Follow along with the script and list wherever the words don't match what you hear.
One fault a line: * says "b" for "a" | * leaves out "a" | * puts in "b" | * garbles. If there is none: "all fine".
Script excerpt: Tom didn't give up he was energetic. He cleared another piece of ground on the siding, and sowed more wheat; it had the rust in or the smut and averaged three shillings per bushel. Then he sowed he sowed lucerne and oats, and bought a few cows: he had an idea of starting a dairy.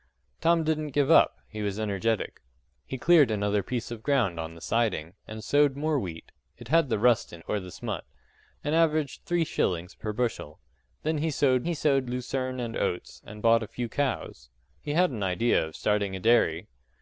all fine